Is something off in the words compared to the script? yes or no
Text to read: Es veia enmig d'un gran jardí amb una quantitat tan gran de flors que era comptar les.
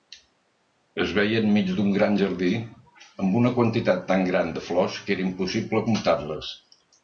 yes